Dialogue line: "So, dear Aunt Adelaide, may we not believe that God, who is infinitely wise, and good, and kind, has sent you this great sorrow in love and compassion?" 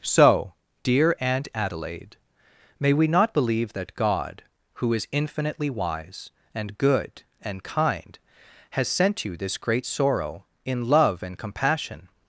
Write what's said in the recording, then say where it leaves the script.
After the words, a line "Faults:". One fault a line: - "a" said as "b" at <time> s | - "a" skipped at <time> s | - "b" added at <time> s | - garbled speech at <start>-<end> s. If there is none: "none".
"So, dear Aunt Adelaide, may we not believe that God, who is infinitely wise, and good, and kind, has sent you this great sorrow in love and compassion?"
Faults:
none